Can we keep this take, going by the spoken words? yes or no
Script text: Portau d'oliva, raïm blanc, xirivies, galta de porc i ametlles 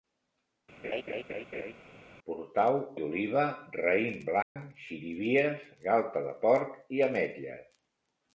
yes